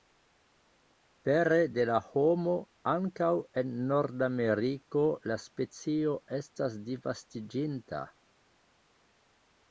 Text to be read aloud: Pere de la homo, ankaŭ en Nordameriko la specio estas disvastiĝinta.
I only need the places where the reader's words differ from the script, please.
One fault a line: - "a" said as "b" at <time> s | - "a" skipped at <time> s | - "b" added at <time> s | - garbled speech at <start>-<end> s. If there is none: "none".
none